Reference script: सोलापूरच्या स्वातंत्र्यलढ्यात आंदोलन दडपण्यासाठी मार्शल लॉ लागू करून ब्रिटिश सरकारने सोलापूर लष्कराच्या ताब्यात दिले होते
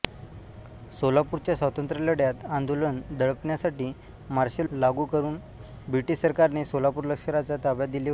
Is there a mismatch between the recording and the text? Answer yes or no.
yes